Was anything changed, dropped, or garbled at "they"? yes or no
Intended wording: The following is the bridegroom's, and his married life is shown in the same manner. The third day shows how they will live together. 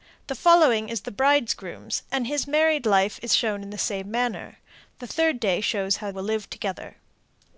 yes